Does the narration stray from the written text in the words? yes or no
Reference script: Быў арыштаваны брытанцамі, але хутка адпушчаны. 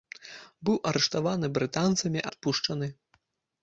yes